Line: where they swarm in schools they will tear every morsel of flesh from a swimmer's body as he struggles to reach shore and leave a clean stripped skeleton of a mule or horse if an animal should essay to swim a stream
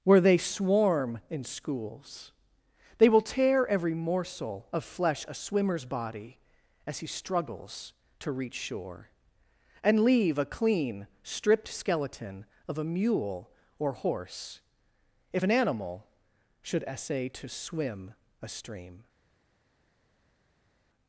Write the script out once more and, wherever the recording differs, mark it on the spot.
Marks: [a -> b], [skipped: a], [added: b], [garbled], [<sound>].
where they swarm in schools they will tear every morsel of flesh [skipped: from] a swimmer's body as he struggles to reach shore and leave a clean stripped skeleton of a mule or horse if an animal should essay to swim a stream